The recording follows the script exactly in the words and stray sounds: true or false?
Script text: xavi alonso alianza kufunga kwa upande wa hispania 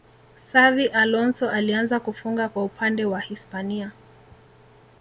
true